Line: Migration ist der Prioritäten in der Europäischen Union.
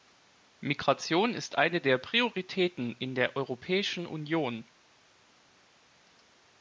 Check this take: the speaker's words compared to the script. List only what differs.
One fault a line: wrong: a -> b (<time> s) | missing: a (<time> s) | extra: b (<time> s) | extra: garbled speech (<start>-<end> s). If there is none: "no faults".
extra: eine (1.6 s)